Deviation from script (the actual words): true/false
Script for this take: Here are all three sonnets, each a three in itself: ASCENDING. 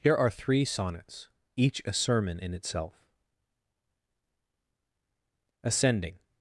true